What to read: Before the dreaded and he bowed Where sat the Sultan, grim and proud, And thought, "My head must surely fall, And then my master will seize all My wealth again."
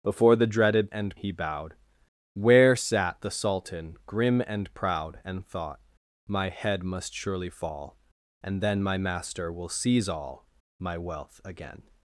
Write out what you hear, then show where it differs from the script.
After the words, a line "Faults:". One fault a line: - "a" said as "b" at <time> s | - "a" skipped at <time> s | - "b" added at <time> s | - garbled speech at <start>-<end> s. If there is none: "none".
Before the dreaded and he bowed Where sat the Sultan, grim and proud, And thought, "My head must surely fall, And then my master will seize all My wealth again."
Faults:
none